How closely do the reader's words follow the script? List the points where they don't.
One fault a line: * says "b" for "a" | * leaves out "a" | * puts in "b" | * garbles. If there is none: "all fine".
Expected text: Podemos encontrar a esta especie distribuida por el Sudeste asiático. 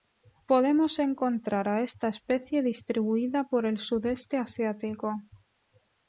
all fine